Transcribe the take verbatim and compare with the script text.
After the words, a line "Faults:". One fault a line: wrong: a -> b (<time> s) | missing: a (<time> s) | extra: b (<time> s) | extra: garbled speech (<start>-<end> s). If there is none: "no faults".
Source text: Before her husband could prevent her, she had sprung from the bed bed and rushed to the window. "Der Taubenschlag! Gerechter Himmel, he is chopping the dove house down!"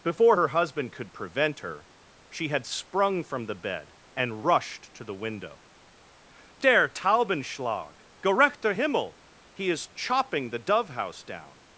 Before her husband could prevent her, she had sprung from the bed and rushed to the window. "Der Taubenschlag! Gerechter Himmel, he is chopping the dove house down!"
Faults:
missing: bed (3.9 s)